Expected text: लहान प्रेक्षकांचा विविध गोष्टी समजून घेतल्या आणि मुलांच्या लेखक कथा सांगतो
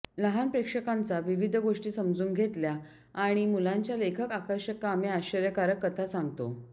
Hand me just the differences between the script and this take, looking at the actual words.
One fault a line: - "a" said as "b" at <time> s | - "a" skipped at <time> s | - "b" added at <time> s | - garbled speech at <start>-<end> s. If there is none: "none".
- "आकर्षक कामे आश्चर्यकारक" added at 4.3 s